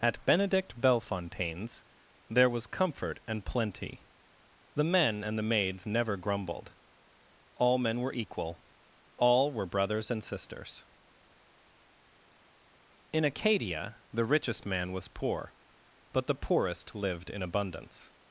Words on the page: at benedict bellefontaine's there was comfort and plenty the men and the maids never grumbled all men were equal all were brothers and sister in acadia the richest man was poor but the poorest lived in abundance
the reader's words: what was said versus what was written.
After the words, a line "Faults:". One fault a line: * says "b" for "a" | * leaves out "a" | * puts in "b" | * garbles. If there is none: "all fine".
at benedict bellefontaine's there was comfort and plenty the men and the maids never grumbled all men were equal all were brothers and sisters in acadia the richest man was poor but the poorest lived in abundance
Faults:
* says "sisters" for "sister"